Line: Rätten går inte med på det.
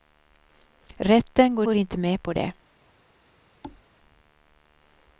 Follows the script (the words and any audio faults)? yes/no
no